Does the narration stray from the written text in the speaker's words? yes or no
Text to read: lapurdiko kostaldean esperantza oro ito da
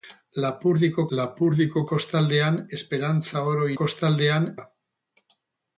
yes